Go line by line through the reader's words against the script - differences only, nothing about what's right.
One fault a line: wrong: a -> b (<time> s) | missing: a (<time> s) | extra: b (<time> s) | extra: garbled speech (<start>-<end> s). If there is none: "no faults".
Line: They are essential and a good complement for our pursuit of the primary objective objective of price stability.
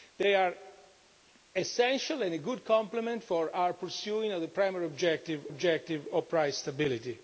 no faults